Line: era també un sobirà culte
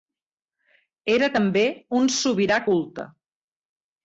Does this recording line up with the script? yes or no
yes